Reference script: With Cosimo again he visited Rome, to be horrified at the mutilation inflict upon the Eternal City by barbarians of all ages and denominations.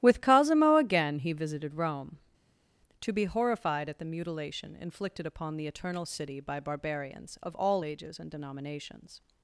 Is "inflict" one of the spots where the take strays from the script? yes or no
yes